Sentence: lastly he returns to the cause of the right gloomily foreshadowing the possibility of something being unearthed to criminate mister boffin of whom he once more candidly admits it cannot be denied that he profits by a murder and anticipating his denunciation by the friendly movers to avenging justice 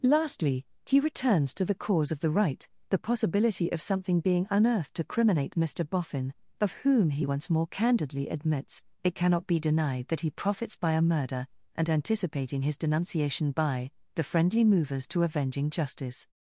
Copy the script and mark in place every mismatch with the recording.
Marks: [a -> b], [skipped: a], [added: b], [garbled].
lastly he returns to the cause of the right [skipped: gloomily foreshadowing] the possibility of something being unearthed to criminate mister boffin of whom he once more candidly admits it cannot be denied that he profits by a murder and anticipating his denunciation by the friendly movers to avenging justice